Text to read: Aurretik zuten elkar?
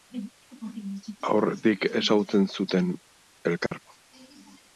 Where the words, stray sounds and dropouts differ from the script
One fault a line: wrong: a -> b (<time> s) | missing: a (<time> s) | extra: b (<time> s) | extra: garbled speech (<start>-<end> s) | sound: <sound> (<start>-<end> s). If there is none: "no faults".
extra: ezagutzen (2.0 s)
sound: dropout (3.7-3.7 s)